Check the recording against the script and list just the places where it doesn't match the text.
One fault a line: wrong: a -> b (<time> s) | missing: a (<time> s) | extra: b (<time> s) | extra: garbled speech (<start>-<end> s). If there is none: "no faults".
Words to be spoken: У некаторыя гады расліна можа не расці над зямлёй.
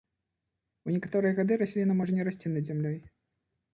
no faults